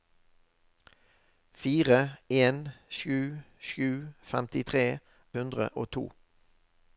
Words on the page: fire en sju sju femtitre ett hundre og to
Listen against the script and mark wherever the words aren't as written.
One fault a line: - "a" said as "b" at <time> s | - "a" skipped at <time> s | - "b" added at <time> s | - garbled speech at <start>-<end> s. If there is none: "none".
- "ett" skipped at 4.8 s